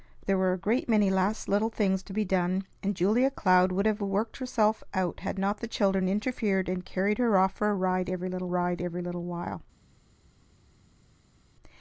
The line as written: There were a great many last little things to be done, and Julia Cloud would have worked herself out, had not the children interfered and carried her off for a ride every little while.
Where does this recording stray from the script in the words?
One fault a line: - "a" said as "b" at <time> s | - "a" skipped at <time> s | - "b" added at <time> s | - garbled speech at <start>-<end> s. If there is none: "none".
- "ride every little" added at 8.5 s